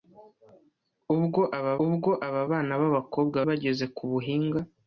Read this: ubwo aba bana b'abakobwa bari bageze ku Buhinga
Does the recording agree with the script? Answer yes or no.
no